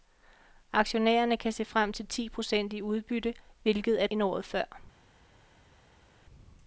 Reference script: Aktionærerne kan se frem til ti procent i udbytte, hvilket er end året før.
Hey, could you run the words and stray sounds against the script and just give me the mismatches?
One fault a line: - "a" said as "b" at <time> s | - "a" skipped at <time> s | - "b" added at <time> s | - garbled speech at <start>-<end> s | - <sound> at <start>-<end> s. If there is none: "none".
none